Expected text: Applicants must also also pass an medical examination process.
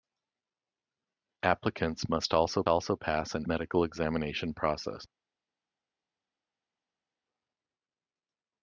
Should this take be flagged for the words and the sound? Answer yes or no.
no